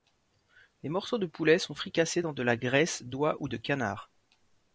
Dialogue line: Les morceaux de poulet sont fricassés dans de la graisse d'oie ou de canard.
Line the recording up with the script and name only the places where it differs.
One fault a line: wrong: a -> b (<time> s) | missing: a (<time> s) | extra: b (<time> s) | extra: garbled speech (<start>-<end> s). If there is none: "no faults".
no faults